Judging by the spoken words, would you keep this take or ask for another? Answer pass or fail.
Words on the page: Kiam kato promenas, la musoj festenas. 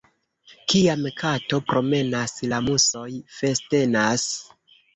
pass